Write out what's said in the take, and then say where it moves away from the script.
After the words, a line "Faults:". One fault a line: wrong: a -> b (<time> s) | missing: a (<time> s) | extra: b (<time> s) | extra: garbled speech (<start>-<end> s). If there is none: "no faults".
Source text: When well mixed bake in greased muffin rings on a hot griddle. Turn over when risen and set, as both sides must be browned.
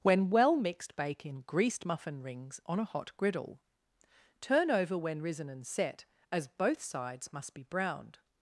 When well mixed bake in greased muffin rings on a hot griddle. Turn over when risen and set, as both sides must be browned.
Faults:
no faults